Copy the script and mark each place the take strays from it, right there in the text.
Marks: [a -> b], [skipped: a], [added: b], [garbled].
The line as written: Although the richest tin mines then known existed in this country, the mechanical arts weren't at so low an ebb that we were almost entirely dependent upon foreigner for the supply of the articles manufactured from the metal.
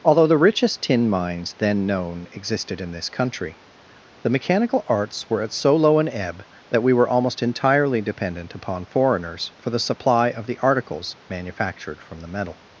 Although the richest tin mines then known existed in this country, the mechanical arts [weren't -> were] at so low an ebb that we were almost entirely dependent upon [foreigner -> foreigners] for the supply of the articles manufactured from the metal.